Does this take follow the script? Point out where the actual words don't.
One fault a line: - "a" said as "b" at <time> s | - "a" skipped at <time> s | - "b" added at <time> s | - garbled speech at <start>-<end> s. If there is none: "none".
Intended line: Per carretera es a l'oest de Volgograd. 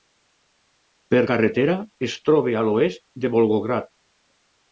- "troba" added at 2.3 s